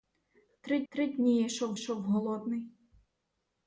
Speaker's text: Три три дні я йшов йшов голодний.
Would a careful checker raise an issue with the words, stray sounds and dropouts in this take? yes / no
no